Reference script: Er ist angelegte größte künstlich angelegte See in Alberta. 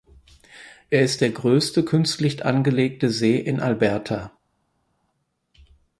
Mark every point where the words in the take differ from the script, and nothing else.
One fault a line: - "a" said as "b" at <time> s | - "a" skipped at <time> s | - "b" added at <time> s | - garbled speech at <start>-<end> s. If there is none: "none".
- "angelegte" said as "der" at 1.2 s